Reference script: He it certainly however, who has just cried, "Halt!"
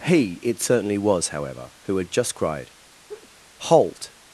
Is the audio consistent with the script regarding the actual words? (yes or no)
no